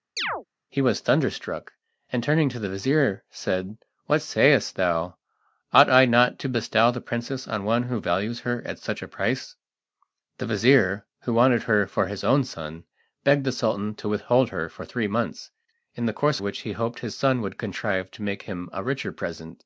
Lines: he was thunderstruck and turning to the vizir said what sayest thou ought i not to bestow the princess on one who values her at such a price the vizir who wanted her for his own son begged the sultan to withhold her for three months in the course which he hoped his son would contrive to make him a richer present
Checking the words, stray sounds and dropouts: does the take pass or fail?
fail